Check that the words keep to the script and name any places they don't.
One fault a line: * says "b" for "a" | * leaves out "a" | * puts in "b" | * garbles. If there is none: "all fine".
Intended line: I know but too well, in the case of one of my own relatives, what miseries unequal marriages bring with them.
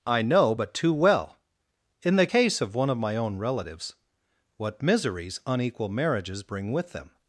all fine